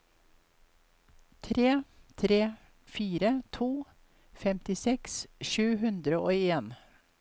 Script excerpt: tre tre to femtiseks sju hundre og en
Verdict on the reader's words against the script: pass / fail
fail